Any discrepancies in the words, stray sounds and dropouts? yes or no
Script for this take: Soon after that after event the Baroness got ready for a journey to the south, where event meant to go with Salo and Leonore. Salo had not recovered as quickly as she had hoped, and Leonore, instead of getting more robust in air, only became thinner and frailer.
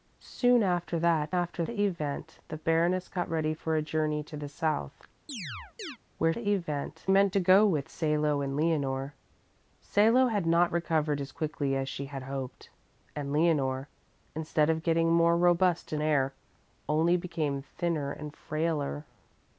yes